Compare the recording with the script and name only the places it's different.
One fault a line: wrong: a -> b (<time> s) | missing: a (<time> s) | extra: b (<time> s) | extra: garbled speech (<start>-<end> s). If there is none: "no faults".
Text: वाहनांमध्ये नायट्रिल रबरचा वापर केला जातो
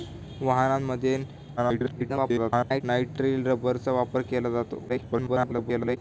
extra: garbled speech (1.6-2.8 s)
extra: garbled speech (4.9-6.0 s)